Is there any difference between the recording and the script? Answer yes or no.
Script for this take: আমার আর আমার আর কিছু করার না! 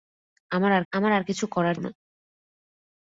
no